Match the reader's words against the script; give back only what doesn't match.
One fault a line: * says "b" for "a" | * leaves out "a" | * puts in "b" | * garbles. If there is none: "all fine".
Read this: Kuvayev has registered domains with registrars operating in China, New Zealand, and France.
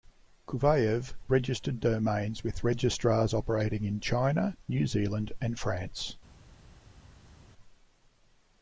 * leaves out "has"